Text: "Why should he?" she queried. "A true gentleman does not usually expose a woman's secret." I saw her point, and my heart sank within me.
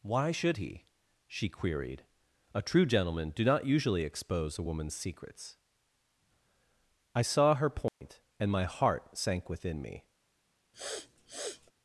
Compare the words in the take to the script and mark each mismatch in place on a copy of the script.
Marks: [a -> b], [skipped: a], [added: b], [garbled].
"Why should he?" she queried. "A true gentleman [does -> do] not usually expose a woman's [secret." -> secrets] I saw her point, and my heart sank within me.